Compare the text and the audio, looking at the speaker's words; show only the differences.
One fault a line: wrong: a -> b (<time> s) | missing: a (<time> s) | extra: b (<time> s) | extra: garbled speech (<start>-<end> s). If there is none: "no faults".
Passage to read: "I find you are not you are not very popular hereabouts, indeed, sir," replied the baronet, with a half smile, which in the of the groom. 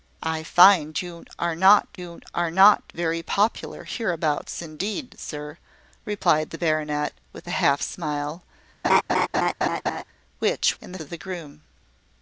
no faults